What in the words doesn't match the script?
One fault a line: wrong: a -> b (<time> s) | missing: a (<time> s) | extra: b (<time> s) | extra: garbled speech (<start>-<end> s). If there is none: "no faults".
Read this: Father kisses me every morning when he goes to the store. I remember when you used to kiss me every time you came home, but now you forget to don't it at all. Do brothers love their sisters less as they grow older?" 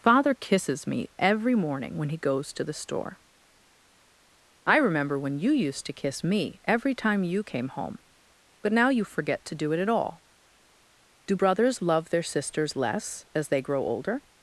wrong: don't -> do (9.5 s)